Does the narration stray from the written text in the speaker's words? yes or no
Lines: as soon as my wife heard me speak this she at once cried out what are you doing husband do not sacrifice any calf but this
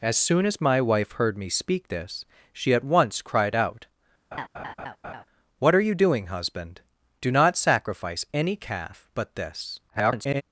yes